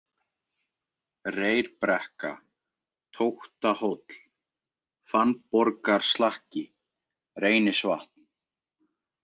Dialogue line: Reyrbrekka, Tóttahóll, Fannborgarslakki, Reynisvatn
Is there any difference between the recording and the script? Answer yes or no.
no